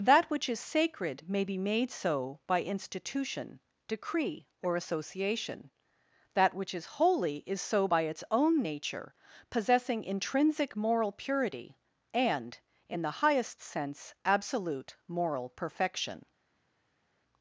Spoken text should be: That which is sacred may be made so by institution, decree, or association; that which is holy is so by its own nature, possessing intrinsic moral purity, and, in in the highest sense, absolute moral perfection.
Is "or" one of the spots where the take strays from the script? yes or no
no